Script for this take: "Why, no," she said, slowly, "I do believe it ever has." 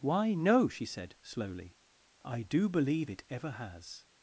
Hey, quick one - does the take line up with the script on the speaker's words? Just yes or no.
yes